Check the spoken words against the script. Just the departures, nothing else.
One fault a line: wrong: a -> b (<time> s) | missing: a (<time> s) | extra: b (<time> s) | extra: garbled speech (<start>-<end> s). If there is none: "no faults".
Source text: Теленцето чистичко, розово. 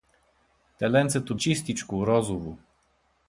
no faults